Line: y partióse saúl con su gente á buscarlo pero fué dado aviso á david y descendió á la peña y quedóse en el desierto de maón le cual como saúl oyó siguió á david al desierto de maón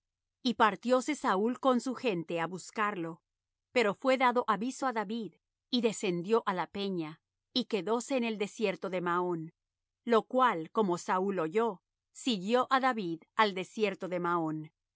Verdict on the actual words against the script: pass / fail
fail